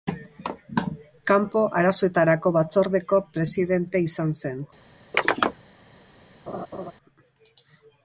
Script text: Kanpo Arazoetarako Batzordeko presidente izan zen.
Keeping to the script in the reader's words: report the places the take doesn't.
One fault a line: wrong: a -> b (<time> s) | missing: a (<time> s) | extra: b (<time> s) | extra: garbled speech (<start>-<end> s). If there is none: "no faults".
no faults